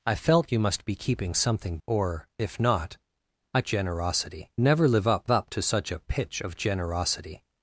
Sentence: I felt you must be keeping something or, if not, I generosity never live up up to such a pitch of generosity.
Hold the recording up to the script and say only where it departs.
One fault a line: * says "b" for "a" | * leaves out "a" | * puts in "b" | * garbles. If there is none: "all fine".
all fine